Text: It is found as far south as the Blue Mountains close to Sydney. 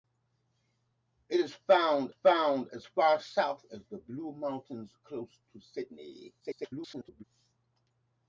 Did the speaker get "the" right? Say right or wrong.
right